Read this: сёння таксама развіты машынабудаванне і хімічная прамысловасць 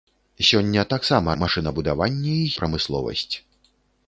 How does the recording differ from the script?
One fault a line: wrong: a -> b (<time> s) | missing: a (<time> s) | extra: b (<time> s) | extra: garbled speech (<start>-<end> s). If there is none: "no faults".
missing: развіты (1.4 s)
missing: хімічная (2.5 s)